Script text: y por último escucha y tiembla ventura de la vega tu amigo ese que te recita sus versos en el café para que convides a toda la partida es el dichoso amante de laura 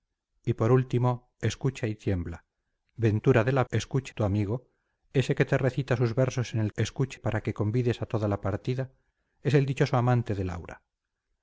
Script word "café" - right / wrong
wrong